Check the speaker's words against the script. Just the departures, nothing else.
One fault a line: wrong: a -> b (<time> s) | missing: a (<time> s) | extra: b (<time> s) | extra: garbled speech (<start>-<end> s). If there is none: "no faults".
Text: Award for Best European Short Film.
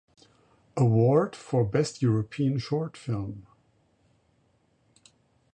no faults